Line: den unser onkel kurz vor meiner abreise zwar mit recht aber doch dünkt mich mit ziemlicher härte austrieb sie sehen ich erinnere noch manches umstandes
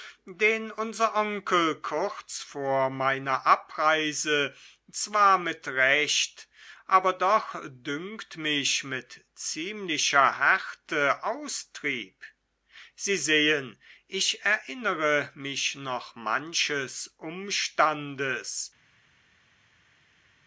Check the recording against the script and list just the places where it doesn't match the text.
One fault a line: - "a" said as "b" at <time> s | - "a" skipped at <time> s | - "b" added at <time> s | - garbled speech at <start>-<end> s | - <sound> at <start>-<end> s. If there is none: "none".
- "mich" added at 15.3 s